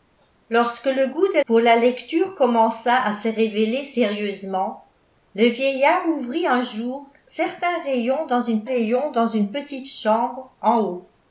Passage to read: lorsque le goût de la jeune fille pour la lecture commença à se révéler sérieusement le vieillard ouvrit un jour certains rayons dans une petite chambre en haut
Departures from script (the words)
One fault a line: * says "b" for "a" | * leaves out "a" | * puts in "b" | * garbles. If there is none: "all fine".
* leaves out "la jeune fille"
* puts in "rayons dans une"